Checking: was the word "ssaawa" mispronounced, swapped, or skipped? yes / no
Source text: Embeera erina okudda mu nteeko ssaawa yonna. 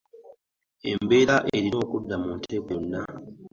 yes